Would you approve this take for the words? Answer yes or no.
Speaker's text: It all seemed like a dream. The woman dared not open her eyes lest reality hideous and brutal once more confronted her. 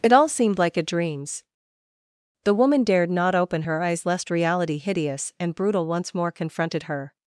no